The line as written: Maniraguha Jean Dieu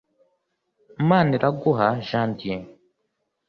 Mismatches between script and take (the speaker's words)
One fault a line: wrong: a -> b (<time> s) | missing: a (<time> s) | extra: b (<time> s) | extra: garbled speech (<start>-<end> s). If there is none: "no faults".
no faults